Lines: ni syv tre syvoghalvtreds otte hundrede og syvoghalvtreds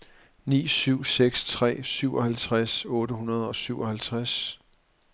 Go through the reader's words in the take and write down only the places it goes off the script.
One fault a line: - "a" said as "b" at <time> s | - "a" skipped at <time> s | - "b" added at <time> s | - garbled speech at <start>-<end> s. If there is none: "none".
- "seks" added at 1.0 s